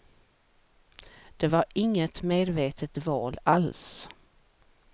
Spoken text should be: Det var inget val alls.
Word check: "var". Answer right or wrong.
right